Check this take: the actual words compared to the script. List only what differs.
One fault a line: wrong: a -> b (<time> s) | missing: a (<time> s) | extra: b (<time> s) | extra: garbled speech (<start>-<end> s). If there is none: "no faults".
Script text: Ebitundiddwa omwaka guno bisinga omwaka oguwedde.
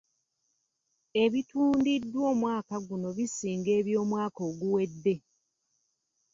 wrong: omwaka -> eby'omwaka (3.8 s)